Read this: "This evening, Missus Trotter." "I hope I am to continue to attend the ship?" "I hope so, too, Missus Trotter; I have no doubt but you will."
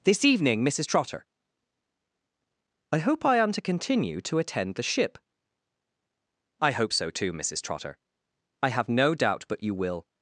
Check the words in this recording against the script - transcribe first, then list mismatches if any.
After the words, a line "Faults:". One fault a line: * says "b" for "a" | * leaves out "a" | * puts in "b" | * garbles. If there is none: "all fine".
"This evening, Missus Trotter." "I hope I am to continue to attend the ship?" "I hope so, too, Missus Trotter; I have no doubt but you will."
Faults:
all fine